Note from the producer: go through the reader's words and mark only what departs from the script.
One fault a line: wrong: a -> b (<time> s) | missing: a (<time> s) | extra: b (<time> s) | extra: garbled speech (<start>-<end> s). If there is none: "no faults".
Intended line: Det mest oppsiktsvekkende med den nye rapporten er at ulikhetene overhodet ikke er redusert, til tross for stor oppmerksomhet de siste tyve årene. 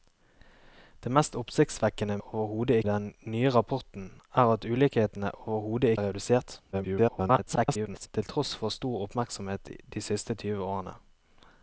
wrong: med -> overhodet (2.2 s)
missing: ikke (5.9 s)
extra: garbled speech (6.7-8.1 s)